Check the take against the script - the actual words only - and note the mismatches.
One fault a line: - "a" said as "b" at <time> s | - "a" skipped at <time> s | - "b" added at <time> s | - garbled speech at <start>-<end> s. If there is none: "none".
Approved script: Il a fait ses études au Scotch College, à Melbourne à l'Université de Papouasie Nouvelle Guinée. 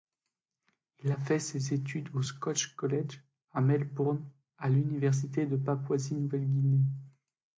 none